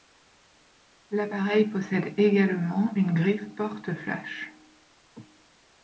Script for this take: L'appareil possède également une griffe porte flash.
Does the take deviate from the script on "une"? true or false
false